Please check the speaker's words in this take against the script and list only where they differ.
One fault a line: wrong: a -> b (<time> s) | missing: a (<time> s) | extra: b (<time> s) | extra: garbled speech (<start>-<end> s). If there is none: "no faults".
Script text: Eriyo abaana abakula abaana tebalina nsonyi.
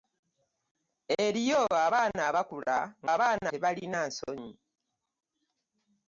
no faults